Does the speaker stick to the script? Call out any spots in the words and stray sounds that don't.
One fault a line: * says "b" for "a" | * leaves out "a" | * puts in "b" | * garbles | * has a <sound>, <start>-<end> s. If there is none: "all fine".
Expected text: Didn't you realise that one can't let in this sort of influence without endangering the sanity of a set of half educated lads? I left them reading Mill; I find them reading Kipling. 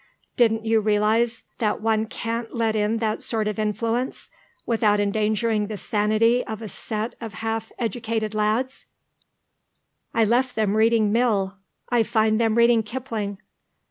* says "that" for "this"